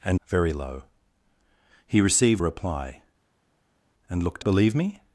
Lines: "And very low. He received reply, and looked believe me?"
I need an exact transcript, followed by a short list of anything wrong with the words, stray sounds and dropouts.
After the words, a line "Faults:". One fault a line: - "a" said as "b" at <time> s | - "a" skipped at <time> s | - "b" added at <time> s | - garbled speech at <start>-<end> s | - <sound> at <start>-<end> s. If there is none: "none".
"And very low. He received reply, and looked believe me?"
Faults:
none